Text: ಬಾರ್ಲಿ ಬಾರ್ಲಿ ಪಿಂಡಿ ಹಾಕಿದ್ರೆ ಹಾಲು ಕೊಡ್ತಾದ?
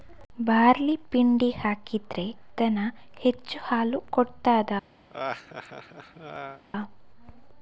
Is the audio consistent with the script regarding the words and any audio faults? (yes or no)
no